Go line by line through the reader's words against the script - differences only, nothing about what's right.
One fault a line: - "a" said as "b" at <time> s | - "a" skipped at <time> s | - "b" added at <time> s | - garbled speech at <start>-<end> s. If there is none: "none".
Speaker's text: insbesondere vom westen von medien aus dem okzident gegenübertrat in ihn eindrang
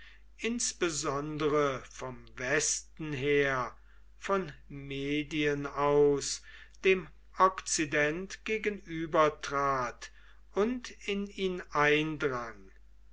- "her" added at 3.1 s
- "und" added at 10.5 s